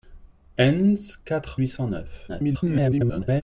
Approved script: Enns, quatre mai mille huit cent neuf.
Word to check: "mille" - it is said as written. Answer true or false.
false